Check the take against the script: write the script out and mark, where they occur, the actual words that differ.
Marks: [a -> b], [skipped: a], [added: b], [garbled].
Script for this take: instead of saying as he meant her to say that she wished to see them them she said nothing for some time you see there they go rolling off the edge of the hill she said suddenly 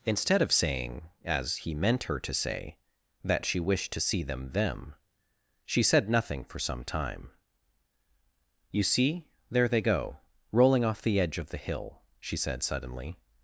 instead of saying as he meant her to say that she wished to see them them she said nothing for some time you see there they go rolling off the edge of the hill she said suddenly